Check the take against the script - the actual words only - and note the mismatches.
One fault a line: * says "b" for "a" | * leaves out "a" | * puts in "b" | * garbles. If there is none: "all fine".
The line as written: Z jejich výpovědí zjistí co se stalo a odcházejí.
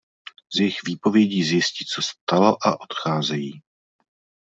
* leaves out "se"